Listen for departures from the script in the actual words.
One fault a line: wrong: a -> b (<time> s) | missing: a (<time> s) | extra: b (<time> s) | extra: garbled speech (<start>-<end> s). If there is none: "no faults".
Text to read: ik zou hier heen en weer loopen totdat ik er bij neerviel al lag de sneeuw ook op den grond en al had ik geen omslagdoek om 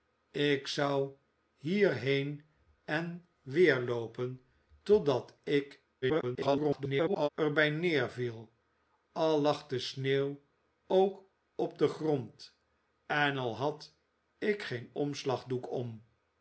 extra: garbled speech (6.0-7.3 s)